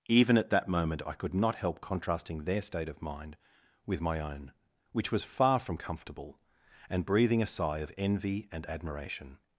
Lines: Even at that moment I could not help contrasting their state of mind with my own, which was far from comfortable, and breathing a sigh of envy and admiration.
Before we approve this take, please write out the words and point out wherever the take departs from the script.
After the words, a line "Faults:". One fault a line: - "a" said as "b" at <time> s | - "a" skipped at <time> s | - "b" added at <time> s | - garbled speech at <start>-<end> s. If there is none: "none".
Even at that moment I could not help contrasting their state of mind with my own, which was far from comfortable, and breathing a sigh of envy and admiration.
Faults:
none